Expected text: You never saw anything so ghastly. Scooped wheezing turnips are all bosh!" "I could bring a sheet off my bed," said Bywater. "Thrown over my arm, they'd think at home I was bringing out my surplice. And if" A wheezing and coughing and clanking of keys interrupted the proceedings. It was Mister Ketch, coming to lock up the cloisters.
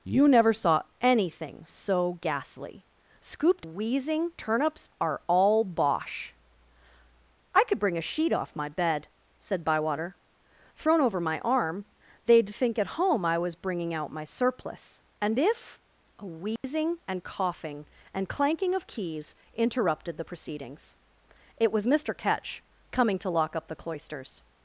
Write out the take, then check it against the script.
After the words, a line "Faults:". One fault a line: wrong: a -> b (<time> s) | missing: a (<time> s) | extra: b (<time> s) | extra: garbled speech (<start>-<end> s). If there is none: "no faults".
You never saw anything so ghastly. Scooped wheezing turnips are all bosh!" "I could bring a sheet off my bed," said Bywater. "Thrown over my arm, they'd think at home I was bringing out my surplice. And if" A wheezing and coughing and clanking of keys interrupted the proceedings. It was Mister Ketch, coming to lock up the cloisters.
Faults:
no faults